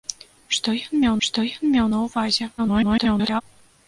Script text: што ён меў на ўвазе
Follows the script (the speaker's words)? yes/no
no